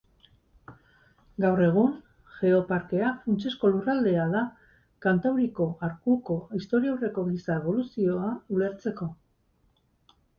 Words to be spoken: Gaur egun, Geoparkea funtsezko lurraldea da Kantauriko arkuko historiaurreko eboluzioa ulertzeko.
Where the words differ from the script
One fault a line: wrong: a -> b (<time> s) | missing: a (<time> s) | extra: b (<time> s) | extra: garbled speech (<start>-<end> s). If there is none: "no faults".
extra: giza (7.3 s)